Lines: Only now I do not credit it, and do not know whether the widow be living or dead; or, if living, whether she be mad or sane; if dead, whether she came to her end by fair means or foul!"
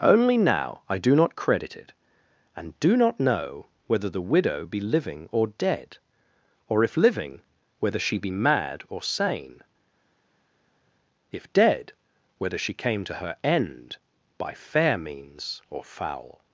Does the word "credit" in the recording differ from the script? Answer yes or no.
no